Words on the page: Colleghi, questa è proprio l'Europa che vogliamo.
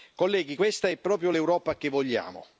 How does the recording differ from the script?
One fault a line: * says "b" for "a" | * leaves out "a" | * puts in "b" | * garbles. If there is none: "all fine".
all fine